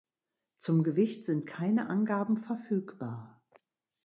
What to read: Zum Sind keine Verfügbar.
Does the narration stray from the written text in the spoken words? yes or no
yes